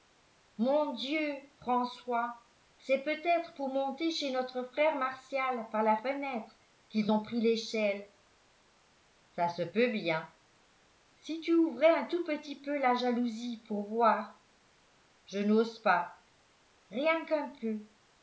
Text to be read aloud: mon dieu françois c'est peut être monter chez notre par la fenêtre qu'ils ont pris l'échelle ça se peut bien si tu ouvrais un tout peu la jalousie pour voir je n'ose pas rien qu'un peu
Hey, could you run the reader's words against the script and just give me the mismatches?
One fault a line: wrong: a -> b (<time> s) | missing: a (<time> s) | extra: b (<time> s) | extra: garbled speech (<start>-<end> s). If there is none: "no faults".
extra: pour (3.5 s)
extra: frère martial (4.6 s)
extra: petit (12.2 s)